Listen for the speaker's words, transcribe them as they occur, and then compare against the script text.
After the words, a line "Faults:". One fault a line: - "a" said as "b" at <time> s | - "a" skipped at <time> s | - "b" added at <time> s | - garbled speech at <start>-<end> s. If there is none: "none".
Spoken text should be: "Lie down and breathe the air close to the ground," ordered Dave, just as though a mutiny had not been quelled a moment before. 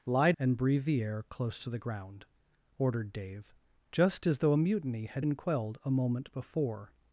"Lie and breathe the air close to the ground," ordered Dave, just as though a mutiny had been quelled a moment before.
Faults:
- "down" skipped at 0.3 s
- "not" skipped at 5.2 s